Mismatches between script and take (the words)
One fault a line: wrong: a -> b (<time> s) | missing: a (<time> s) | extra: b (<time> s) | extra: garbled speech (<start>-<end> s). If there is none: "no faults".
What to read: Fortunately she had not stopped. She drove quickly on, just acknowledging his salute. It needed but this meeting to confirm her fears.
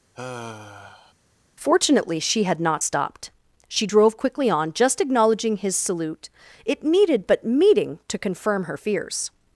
missing: this (7.4 s)